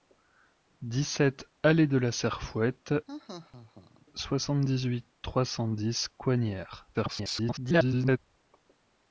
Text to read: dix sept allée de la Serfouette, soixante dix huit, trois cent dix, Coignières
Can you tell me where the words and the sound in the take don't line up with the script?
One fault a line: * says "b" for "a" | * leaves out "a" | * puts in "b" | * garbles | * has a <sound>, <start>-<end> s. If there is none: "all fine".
* has a laugh, 3.1-4.1 s
* garbles